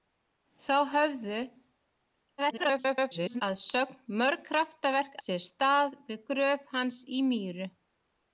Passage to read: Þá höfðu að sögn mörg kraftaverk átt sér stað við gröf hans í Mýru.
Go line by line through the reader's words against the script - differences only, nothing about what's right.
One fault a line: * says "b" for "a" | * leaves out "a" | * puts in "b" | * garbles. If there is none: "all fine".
* garbles
* leaves out "átt"